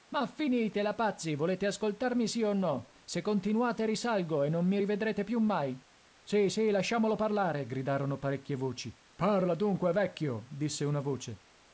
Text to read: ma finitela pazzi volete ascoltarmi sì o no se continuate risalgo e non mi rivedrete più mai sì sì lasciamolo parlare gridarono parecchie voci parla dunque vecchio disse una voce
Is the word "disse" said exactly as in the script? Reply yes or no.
yes